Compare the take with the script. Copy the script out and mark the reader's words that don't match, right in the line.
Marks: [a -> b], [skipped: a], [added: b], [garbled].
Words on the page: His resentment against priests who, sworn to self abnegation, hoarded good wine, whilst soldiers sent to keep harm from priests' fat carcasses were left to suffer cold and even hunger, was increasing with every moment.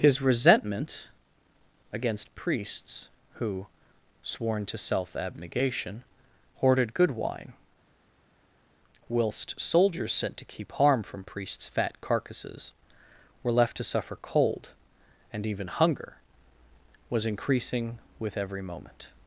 His resentment against priests who, sworn to self abnegation, hoarded good wine, whilst soldiers sent to keep harm from priests' fat carcasses were left to suffer cold and even hunger, was increasing with every moment.